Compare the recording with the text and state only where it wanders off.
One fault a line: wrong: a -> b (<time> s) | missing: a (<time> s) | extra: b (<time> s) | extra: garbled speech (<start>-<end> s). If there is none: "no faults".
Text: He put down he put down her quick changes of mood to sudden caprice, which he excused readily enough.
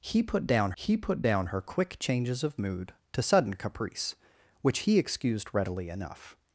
no faults